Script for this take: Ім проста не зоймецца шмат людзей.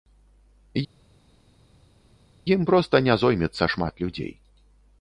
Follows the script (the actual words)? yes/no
yes